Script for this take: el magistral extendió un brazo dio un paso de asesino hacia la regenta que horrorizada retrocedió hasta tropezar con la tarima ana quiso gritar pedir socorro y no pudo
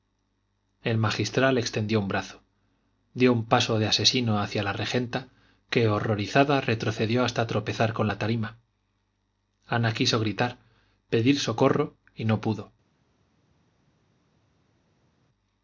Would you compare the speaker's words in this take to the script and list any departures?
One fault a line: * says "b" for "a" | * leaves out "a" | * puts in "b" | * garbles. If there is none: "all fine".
all fine